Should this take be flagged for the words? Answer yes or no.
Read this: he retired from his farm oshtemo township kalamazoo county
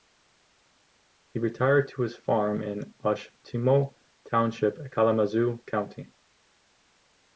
yes